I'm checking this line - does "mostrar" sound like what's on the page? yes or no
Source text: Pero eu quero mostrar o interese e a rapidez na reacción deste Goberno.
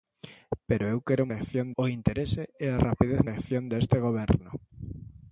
no